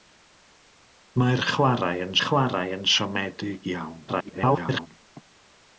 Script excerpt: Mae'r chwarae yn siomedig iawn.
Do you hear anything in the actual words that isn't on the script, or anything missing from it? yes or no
yes